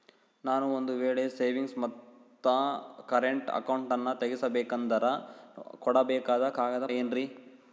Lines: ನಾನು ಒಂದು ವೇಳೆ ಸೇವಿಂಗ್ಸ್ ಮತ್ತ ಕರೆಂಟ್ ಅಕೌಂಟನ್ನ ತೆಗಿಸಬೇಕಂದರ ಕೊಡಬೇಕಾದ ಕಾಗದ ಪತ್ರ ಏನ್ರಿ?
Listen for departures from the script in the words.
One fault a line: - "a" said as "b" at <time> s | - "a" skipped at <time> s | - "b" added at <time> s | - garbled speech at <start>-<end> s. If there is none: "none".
- "ಪತ್ರ" skipped at 6.9 s